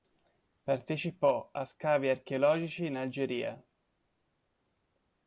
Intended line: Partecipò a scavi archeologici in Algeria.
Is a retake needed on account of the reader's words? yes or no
no